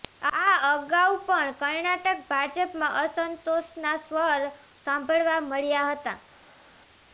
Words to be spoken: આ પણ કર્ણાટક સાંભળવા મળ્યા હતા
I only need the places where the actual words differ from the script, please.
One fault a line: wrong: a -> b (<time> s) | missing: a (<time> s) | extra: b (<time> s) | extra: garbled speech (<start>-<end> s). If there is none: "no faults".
extra: અગાઉ (0.7 s)
extra: ભાજપમાં અસંતોષના સ્વર (2.3 s)